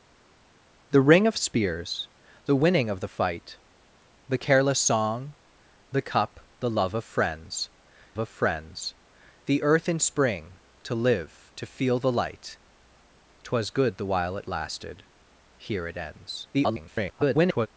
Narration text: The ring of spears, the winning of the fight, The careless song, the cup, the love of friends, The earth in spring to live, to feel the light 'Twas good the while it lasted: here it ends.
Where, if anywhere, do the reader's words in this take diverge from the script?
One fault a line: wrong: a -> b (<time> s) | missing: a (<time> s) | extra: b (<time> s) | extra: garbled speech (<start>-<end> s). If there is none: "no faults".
extra: of friends (8.2 s)
extra: garbled speech (16.5-17.7 s)